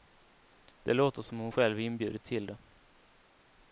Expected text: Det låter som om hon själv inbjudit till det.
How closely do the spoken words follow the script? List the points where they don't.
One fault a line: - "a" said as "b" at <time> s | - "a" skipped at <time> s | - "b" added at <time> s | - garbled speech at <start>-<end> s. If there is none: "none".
none